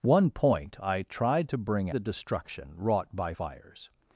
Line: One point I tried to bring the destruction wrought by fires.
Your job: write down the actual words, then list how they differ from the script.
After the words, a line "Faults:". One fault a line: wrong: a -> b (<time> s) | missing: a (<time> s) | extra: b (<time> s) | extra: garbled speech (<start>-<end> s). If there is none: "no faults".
One point I tried to bring the destruction wrought by fires.
Faults:
no faults